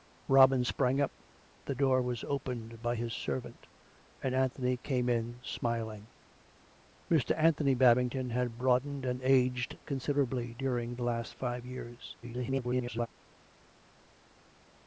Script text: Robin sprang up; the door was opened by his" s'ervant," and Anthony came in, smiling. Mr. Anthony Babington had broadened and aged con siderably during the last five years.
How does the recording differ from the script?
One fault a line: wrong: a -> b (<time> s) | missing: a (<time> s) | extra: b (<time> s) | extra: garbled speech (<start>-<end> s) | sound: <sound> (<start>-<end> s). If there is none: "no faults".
extra: garbled speech (12.2-13.1 s)